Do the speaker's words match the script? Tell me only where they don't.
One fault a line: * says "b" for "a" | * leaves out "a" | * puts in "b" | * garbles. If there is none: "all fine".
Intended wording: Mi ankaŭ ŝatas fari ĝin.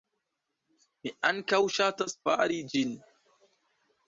all fine